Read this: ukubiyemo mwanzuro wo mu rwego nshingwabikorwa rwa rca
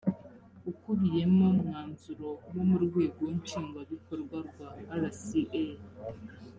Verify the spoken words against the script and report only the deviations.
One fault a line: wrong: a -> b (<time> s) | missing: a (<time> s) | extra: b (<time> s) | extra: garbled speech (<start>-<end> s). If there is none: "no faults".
no faults